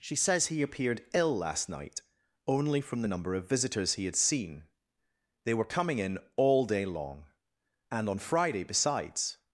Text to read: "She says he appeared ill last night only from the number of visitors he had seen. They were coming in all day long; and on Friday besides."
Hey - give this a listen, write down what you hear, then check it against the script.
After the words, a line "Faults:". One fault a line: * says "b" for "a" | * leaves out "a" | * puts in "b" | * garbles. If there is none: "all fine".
"She says he appeared ill last night only from the number of visitors he had seen. They were coming in all day long; and on Friday besides."
Faults:
all fine